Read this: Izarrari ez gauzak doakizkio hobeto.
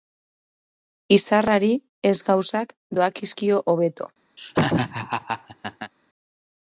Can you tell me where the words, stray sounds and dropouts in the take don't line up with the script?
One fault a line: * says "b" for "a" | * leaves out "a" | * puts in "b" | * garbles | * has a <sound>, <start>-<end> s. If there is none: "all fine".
* has a laugh, 4.4-5.9 s